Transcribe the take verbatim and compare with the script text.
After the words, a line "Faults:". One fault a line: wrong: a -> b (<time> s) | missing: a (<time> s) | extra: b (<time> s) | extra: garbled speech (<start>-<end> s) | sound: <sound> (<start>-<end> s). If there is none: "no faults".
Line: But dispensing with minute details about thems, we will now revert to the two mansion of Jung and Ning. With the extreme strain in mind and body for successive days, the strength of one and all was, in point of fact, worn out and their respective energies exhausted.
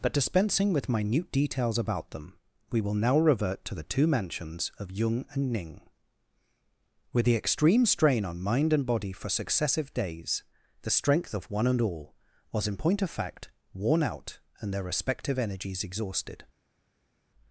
But dispensing with minute details about them, we will now revert to the two mansions of Jung and Ning. With the extreme strain on mind and body for successive days, the strength of one and all was, in point of fact, worn out and their respective energies exhausted.
Faults:
wrong: thems -> them (2.1 s)
wrong: mansion -> mansions (4.1 s)
wrong: in -> on (8.2 s)